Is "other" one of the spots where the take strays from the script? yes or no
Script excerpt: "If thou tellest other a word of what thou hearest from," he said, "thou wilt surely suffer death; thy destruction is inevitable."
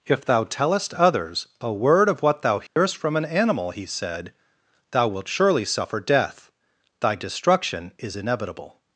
yes